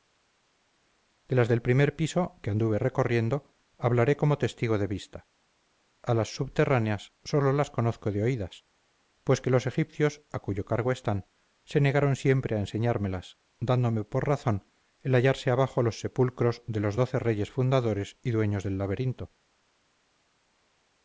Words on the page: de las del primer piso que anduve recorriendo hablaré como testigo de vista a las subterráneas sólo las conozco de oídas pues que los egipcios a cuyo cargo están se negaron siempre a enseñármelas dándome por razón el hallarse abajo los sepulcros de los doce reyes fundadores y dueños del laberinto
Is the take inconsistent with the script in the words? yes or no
no